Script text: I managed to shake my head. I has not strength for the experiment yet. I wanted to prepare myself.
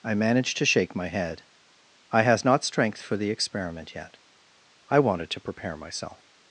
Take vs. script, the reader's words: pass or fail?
pass